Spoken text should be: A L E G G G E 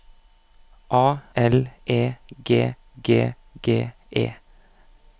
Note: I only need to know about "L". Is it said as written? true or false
true